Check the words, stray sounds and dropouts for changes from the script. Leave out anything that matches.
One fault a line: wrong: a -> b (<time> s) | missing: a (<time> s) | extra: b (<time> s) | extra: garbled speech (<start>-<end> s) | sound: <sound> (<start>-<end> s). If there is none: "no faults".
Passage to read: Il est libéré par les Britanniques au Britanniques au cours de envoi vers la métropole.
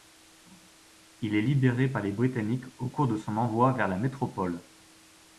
missing: Britanniques au (2.9 s)
extra: son (3.2 s)